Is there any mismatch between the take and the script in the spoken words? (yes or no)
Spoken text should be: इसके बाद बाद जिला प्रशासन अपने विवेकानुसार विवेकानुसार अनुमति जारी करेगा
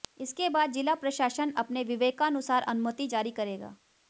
yes